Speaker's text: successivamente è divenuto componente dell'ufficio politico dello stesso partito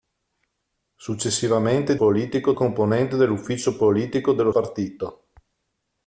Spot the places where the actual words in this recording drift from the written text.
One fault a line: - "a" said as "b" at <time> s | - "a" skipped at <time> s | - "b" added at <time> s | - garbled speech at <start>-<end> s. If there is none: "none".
- "divenuto" said as "politico" at 2.0 s
- "stesso" skipped at 4.5 s